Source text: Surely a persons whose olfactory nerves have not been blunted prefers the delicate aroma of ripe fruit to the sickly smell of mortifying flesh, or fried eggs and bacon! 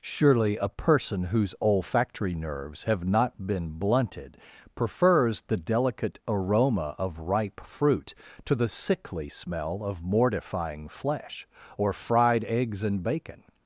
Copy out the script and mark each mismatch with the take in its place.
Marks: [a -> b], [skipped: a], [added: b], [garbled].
Surely a [persons -> person] whose olfactory nerves have not been blunted prefers the delicate aroma of ripe fruit to the sickly smell of mortifying flesh, or fried eggs and bacon!